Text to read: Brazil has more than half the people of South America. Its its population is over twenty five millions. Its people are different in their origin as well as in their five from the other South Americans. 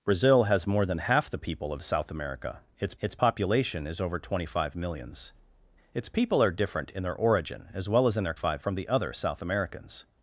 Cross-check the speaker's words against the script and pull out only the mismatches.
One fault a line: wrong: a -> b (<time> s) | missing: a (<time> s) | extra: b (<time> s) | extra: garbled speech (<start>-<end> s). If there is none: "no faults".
no faults